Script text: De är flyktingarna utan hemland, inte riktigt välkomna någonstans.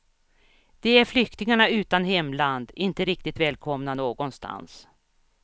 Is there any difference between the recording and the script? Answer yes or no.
no